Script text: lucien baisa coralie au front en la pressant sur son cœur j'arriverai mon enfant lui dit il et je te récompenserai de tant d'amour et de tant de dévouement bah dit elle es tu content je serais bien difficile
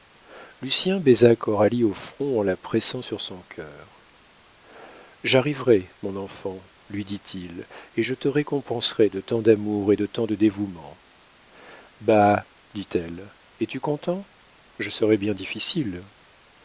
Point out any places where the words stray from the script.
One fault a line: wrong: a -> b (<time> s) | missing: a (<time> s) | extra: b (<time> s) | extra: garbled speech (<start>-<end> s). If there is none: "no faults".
no faults